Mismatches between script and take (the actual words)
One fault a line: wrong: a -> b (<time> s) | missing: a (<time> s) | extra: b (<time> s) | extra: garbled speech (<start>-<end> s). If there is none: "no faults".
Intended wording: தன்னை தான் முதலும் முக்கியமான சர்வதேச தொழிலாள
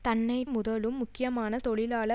missing: தான் (0.4 s)
missing: சர்வதேச (1.6 s)